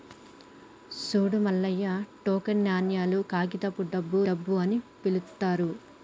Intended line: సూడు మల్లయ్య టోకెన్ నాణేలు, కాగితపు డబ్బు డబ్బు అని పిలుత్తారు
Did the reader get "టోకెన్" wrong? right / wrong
right